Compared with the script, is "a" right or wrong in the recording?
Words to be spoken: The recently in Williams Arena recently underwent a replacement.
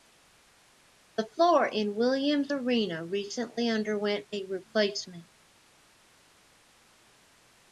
right